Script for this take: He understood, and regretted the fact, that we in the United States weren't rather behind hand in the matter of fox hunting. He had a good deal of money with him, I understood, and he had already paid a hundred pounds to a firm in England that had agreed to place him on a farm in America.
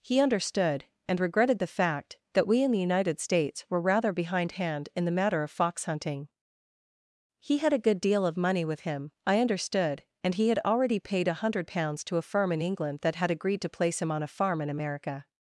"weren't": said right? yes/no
no